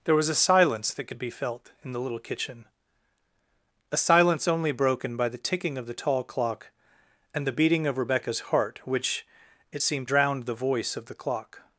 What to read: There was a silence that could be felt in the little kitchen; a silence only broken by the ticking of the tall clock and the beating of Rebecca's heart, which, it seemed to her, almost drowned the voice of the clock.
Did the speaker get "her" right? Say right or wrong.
wrong